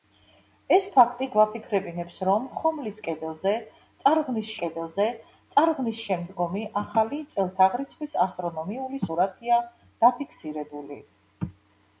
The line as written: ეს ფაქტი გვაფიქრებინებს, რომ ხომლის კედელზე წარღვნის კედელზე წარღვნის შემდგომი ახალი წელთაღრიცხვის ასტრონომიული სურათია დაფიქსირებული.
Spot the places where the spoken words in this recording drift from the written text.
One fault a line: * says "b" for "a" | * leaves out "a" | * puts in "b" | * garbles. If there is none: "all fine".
all fine